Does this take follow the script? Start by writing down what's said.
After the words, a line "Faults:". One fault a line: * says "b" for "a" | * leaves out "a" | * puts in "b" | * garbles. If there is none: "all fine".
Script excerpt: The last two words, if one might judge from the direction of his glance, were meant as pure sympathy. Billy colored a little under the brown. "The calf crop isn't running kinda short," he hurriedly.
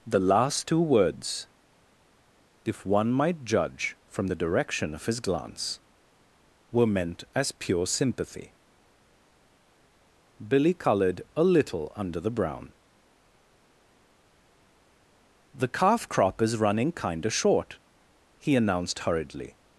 The last two words, if one might judge from the direction of his glance, were meant as pure sympathy. Billy colored a little under the brown. "The calf crop is running kinda short," he announced hurriedly.
Faults:
* says "is" for "isn't"
* puts in "announced"